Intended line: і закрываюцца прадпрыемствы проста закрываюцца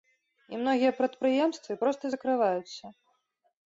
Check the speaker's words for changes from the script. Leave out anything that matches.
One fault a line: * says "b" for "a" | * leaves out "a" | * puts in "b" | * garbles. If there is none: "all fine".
* says "многія" for "закрываюцца"